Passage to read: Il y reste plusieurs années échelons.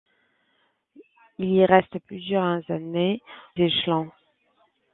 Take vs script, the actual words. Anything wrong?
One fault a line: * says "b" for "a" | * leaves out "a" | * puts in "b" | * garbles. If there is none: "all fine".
all fine